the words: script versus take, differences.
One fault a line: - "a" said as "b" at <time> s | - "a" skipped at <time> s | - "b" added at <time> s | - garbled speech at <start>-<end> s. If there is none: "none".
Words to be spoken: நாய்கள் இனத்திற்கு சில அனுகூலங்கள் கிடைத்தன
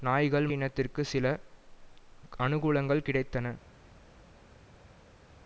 none